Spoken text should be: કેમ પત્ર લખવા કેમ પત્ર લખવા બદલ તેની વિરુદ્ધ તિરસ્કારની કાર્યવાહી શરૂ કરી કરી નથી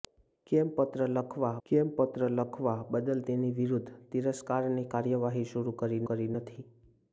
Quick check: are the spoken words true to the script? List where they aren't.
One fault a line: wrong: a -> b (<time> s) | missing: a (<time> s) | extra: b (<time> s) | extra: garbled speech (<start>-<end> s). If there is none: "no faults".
no faults